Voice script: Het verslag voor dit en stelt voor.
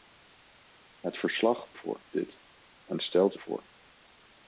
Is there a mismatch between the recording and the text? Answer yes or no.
no